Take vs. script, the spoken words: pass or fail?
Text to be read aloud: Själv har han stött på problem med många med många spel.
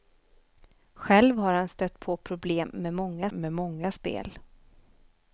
pass